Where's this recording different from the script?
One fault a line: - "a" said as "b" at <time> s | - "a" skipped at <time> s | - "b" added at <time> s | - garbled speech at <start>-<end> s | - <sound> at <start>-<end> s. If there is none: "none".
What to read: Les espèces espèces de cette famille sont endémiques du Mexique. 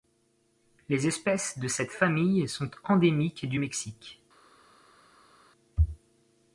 - "espèces" skipped at 1.6 s